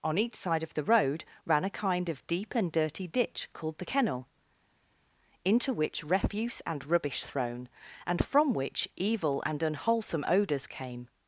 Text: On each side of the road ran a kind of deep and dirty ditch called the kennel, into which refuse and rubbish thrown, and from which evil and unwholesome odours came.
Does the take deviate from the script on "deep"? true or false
false